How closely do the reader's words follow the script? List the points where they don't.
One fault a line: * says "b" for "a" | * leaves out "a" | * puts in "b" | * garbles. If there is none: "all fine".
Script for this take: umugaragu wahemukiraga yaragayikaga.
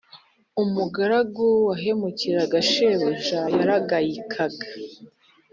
* puts in "shebuja"